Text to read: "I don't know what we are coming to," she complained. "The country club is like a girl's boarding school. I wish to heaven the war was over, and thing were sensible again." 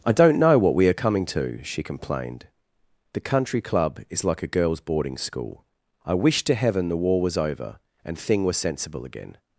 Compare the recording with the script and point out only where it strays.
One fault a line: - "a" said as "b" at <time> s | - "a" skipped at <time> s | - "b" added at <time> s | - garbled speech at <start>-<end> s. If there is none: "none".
none